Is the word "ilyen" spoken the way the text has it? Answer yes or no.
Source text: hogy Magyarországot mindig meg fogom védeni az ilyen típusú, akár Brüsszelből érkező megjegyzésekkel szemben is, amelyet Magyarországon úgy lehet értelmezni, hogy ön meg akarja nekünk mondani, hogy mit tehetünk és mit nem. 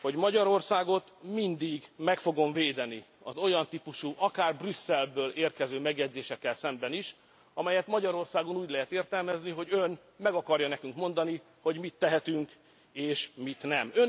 no